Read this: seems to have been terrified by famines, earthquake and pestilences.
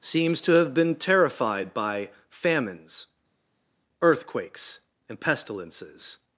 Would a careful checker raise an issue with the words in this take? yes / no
yes